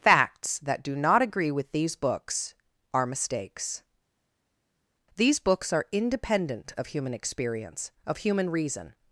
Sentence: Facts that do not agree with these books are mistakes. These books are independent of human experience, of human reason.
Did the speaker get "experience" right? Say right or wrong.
right